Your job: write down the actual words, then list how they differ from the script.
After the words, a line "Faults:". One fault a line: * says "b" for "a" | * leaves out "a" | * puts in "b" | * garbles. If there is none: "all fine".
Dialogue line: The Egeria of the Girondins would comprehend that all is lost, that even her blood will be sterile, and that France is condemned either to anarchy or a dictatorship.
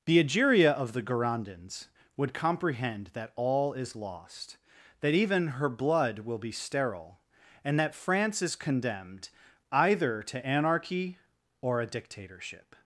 The Egeria of the Girondins would comprehend that all is lost, that even her blood will be sterile, and that France is condemned either to anarchy or a dictatorship.
Faults:
all fine